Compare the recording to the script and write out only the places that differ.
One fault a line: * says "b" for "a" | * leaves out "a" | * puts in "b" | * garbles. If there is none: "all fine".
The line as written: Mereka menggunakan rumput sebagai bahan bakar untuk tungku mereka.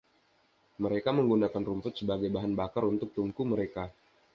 all fine